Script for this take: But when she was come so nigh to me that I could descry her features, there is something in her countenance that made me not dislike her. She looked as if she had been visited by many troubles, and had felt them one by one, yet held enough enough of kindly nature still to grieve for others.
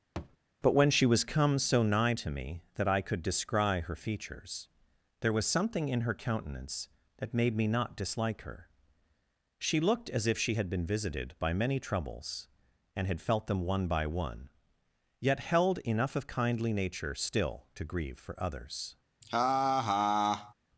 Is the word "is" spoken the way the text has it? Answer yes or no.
no